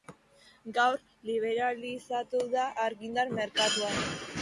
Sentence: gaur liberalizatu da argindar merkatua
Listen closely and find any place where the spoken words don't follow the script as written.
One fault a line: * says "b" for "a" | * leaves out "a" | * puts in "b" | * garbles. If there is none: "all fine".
all fine